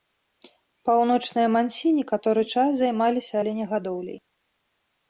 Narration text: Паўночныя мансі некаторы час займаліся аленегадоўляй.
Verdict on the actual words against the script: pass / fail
pass